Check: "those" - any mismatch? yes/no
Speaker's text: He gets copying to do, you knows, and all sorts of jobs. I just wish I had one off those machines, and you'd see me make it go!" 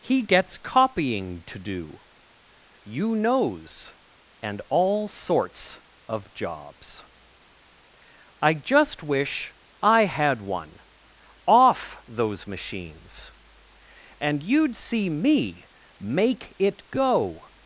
no